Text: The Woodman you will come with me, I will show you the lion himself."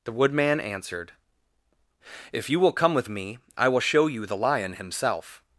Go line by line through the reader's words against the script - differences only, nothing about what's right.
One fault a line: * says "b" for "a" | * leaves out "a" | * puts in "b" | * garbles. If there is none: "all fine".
* puts in "answered If"